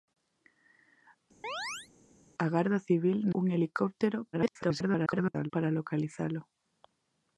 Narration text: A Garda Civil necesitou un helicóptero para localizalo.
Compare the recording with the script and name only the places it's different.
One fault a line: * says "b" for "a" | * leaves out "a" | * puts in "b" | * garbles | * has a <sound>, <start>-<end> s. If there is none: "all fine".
* has a chirp, 1.4-1.9 s
* leaves out "necesitou"
* garbles